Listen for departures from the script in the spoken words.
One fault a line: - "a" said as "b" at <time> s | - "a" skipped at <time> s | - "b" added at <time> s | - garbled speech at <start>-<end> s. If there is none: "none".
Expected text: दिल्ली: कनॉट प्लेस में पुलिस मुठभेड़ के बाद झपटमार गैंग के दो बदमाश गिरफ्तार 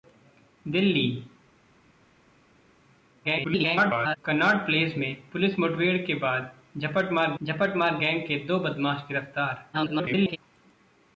- garbled speech at 3.2-4.2 s
- "झपटमार" added at 7.4 s
- garbled speech at 9.7-10.4 s